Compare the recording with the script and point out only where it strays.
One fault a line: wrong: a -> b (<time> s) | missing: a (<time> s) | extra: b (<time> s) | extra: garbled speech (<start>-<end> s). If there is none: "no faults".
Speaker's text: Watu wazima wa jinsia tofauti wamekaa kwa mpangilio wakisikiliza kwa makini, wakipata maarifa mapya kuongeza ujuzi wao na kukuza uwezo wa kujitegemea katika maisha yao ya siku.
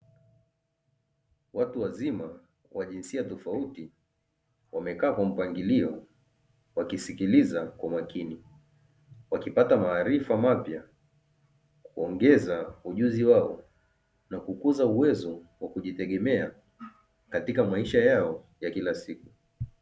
extra: kila (18.7 s)